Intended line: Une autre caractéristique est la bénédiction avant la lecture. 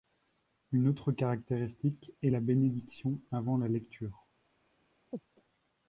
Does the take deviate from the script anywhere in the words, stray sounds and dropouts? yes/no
yes